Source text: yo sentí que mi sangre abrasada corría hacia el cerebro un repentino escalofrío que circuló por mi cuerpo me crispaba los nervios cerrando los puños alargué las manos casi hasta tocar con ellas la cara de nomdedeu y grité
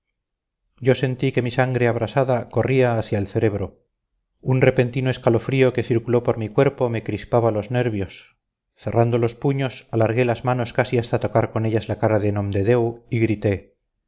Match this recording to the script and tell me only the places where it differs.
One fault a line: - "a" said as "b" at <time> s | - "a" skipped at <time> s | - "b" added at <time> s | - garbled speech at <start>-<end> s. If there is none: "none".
none